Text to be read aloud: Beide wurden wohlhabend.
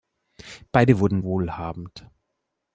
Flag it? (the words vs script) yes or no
no